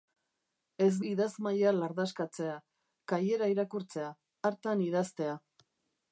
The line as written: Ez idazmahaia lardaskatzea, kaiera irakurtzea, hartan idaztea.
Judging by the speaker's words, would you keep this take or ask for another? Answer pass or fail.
pass